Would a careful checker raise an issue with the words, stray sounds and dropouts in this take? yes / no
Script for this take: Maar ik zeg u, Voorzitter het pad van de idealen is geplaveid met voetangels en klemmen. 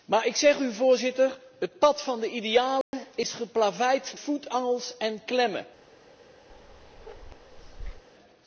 yes